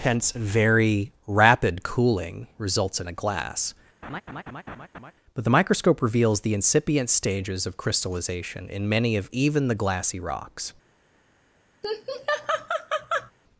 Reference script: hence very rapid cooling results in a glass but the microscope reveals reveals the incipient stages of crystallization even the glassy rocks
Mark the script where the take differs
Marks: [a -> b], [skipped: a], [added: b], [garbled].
hence very rapid cooling results in a glass but the microscope reveals [skipped: reveals] the incipient stages of crystallization [added: in many of] even the glassy rocks